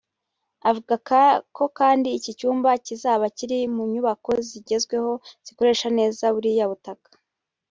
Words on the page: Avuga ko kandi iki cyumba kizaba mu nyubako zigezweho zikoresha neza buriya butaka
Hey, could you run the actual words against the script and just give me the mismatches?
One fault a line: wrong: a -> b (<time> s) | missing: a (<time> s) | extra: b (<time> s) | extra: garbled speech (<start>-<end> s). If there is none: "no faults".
extra: kiri (3.4 s)